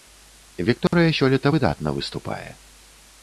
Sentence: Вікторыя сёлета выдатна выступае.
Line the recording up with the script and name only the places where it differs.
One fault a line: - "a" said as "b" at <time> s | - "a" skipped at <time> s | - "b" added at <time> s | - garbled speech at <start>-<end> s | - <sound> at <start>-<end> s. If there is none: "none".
- dropout at 0.9-0.9 s